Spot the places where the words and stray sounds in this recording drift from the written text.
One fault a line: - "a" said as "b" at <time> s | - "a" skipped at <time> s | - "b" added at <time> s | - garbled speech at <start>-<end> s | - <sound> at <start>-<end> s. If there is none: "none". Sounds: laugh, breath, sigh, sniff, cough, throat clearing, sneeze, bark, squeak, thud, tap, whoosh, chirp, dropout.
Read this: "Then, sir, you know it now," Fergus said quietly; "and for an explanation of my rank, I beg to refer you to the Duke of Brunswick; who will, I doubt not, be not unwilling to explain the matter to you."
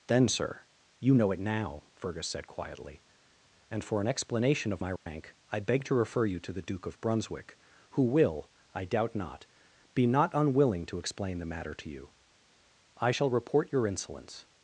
- dropout at 5.0-5.1 s
- "I shall report your insolence" added at 13.0 s